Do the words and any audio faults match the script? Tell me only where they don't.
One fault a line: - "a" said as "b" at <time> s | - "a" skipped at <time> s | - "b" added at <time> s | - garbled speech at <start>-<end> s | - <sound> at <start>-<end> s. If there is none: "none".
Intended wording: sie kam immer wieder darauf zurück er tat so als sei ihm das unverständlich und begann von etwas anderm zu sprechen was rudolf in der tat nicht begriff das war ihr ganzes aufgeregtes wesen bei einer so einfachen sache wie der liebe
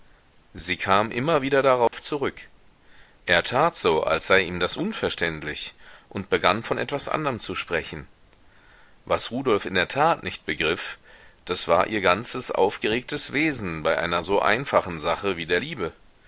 - dropout at 1.9-1.9 s